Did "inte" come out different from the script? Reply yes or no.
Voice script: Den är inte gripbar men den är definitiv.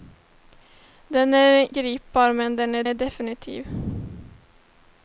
yes